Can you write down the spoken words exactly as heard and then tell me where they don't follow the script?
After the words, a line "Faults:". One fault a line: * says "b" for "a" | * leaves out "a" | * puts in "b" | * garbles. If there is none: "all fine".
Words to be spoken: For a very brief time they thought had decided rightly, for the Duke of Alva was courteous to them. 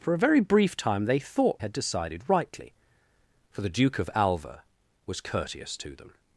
For a very brief time they thought had decided rightly, for the Duke of Alva was courteous to them.
Faults:
all fine